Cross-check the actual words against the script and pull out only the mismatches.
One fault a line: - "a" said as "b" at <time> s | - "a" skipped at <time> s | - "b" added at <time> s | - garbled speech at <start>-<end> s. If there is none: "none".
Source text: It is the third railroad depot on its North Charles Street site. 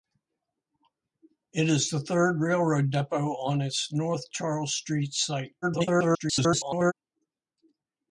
- garbled speech at 5.6-6.9 s